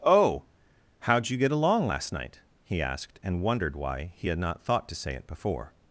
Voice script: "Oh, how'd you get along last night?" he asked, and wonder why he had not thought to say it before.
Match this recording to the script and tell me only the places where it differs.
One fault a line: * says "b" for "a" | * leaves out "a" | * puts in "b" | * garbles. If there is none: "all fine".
* says "wondered" for "wonder"